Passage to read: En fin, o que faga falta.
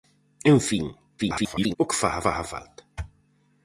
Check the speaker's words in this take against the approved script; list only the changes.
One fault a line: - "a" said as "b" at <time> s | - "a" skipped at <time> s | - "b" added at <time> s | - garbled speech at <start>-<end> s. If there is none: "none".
- garbled speech at 1.2-1.8 s
- "faga" added at 2.2 s